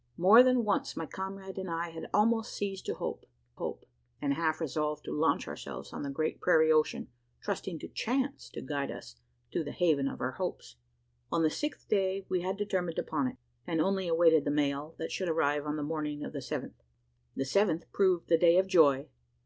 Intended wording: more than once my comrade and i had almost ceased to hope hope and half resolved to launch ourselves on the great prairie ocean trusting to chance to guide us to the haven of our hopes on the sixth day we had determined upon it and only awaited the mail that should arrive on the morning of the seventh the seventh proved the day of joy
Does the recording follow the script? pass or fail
pass